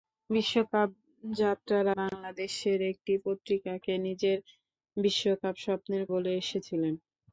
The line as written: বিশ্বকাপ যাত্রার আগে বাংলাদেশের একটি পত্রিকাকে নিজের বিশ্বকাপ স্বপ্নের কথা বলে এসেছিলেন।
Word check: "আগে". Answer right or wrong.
wrong